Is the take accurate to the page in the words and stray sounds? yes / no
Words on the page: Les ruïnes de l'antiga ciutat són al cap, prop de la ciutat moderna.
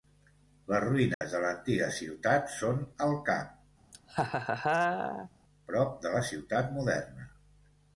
no